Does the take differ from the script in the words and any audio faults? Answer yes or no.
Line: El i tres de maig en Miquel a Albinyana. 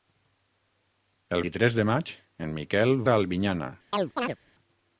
yes